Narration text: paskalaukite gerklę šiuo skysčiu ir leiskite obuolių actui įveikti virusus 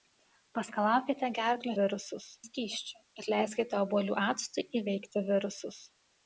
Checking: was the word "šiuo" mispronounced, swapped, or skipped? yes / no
yes